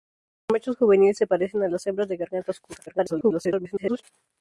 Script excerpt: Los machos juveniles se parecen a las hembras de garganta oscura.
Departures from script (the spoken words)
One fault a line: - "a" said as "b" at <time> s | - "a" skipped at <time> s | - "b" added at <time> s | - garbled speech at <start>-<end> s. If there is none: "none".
- garbled speech at 2.9-4.0 s